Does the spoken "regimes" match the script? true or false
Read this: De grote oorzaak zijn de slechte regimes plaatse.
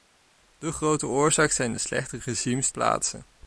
true